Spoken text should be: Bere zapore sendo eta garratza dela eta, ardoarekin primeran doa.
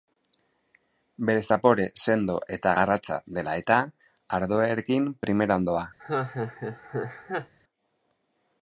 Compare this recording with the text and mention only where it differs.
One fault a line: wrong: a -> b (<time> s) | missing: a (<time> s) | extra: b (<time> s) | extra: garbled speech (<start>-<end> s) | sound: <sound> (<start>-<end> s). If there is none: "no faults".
sound: laugh (6.0-7.5 s)